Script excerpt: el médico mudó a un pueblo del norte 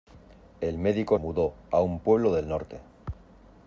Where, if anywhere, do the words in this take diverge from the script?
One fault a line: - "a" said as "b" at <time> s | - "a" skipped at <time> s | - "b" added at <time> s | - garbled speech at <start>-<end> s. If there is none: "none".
none